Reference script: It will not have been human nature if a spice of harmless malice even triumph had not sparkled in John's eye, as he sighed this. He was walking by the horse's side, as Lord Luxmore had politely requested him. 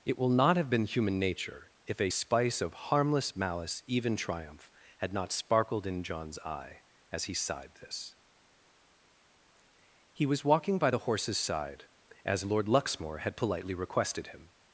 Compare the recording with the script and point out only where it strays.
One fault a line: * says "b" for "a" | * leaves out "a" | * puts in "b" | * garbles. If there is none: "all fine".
all fine